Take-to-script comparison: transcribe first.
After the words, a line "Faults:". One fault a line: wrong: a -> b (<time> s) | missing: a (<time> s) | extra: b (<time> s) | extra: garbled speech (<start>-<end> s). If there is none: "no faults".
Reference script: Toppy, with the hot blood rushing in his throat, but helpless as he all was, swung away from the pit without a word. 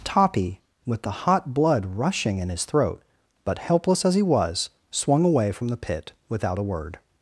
Toppy, with the hot blood rushing in his throat, but helpless as he was, swung away from the pit without a word.
Faults:
missing: all (4.2 s)